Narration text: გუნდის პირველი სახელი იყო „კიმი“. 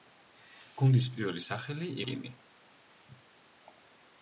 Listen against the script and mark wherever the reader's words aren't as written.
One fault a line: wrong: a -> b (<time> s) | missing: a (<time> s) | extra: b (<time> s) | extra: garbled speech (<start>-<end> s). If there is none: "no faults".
missing: იყო (1.9 s)